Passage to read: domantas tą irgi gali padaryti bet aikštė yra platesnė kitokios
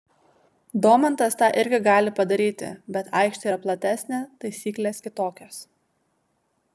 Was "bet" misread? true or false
false